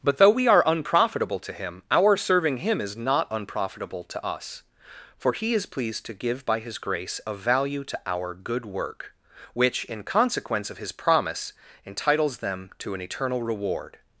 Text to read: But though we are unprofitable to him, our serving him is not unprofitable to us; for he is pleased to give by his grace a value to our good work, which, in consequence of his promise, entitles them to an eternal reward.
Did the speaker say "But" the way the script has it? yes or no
yes